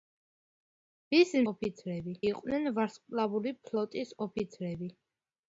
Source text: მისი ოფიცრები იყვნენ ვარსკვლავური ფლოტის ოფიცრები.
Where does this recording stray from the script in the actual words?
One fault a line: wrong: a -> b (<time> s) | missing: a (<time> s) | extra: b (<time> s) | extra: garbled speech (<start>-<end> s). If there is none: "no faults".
no faults